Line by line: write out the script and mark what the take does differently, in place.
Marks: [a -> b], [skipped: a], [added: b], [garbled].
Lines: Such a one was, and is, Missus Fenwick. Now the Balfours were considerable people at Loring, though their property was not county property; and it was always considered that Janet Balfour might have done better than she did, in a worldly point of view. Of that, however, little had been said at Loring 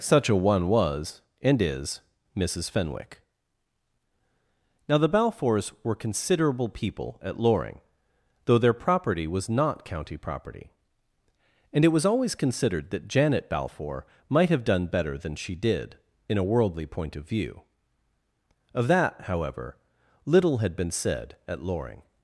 Such a one was, and is, Missus Fenwick. Now the Balfours were considerable people at Loring, though their property was not county property; and it was always considered that Janet Balfour might have done better than she did, in a worldly point of view. Of that, however, little had been said at Loring